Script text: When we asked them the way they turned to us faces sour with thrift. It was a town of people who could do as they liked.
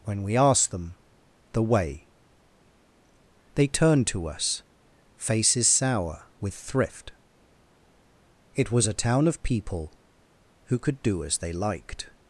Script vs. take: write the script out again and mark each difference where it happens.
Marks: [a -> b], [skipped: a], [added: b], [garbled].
When we asked them the way they turned to us faces sour with thrift. It was a town of people who could do as they liked.